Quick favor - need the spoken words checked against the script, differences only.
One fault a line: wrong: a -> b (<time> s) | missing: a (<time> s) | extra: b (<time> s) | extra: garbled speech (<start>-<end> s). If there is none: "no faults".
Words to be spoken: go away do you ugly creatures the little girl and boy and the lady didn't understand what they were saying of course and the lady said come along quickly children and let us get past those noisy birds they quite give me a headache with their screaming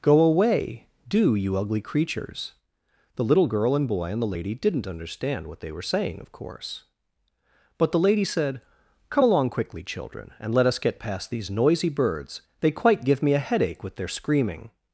wrong: and -> but (7.8 s)
wrong: those -> these (11.3 s)